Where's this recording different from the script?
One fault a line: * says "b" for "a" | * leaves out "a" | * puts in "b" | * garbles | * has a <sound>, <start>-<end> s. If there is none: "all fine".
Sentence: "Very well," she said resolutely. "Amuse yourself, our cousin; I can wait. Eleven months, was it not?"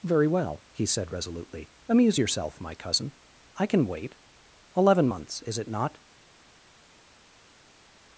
* says "he" for "she"
* says "my" for "our"
* says "is" for "was"